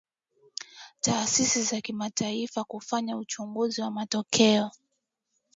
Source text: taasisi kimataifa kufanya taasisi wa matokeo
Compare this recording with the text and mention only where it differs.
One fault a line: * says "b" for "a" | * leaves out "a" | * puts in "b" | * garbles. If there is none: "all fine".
* puts in "za"
* says "uchunguzi" for "taasisi"